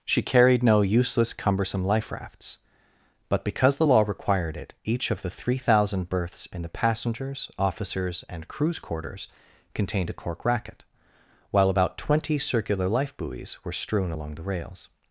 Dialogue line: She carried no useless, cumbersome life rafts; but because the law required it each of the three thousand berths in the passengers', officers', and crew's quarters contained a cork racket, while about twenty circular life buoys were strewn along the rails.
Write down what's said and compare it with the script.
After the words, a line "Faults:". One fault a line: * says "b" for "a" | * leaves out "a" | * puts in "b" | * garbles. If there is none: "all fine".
She carried no useless, cumbersome life rafts; but because the law required it each of the three thousand berths in the passengers', officers', and crew's quarters contained a cork racket, while about twenty circular life buoys were strewn along the rails.
Faults:
all fine